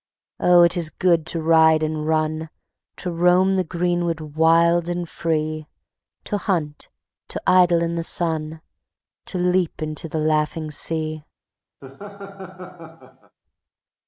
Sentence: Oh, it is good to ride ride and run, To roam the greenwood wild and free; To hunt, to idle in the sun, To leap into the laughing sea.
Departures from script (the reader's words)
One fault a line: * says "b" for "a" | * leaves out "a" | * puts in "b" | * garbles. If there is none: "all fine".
* leaves out "ride"